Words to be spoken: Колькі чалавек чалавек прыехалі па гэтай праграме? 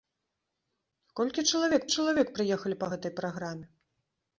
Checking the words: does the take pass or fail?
pass